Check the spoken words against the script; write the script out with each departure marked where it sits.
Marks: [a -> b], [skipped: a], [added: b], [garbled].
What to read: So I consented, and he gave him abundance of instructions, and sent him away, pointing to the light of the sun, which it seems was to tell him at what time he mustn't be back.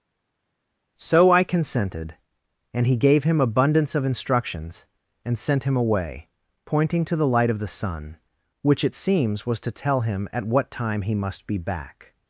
So I consented, and he gave him abundance of instructions, and sent him away, pointing to the light of the sun, which it seems was to tell him at what time he [mustn't -> must] be back.